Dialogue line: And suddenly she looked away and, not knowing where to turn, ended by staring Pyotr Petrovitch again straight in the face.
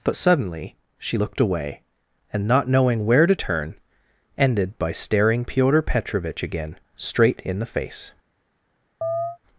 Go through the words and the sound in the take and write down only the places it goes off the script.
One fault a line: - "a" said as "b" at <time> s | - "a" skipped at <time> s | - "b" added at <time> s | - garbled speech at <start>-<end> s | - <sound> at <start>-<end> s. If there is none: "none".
- "And" said as "But" at 0.0 s
- chirp at 9.0-9.4 s